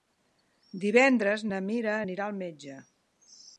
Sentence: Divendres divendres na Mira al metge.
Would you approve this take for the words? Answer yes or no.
no